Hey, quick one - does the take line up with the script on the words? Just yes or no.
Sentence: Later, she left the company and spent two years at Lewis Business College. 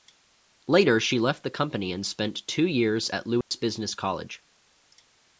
yes